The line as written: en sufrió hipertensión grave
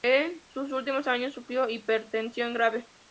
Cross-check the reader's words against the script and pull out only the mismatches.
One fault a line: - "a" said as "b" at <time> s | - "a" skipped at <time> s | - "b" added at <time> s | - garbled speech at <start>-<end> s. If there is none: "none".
- "sus últimos años" added at 0.5 s